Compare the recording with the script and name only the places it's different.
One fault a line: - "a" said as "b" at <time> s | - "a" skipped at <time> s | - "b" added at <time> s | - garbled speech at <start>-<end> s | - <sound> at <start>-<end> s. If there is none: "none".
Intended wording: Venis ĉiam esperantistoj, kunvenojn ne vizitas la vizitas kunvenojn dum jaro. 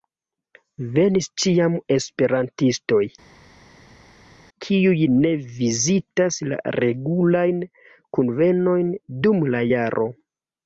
- "kunvenojn" said as "kiuj" at 4.7 s
- "vizitas" said as "regulajn" at 6.8 s
- "la" added at 9.6 s